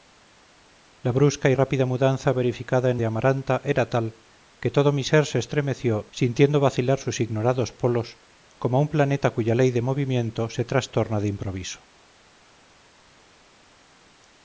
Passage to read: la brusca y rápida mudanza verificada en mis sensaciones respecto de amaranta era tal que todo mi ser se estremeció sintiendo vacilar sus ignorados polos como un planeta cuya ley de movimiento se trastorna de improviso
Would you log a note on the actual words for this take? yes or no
yes